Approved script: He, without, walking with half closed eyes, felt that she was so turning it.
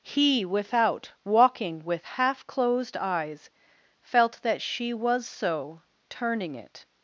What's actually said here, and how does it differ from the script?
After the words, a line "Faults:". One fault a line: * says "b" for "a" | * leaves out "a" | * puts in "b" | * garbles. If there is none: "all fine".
He, without, walking with half closed eyes, felt that she was so turning it.
Faults:
all fine